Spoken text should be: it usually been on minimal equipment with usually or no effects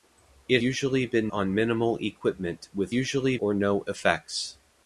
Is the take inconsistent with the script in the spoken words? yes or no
no